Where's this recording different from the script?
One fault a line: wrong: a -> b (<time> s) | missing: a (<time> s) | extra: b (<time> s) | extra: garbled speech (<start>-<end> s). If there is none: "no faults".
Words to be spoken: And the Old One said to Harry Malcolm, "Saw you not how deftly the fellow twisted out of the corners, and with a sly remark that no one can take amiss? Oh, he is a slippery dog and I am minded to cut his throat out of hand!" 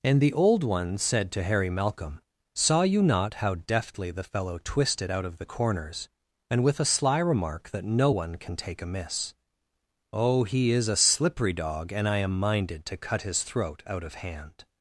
no faults